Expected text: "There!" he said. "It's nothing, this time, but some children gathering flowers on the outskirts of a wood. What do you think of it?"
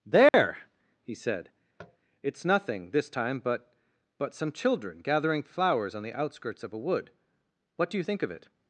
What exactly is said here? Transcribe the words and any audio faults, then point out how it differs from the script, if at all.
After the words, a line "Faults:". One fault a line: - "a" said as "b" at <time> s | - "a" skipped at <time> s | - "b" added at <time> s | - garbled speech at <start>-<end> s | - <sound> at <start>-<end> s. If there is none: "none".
"There!" he said. "It's nothing, this time, but but some children gathering flowers on the outskirts of a wood. What do you think of it?"
Faults:
- dropout at 0.3-0.3 s
- tap at 1.8-2.0 s
- "but" added at 4.2 s